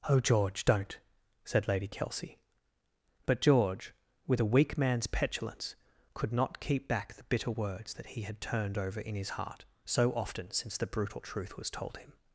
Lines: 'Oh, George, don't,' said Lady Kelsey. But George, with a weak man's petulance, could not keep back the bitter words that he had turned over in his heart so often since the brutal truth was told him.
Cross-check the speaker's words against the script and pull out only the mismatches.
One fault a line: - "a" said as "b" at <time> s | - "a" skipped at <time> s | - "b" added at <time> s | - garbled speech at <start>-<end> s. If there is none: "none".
none